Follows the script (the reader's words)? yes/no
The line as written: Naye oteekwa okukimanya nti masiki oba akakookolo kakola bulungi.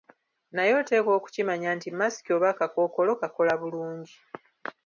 yes